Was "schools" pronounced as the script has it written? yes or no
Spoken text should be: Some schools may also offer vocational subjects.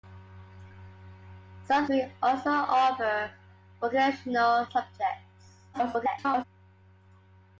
no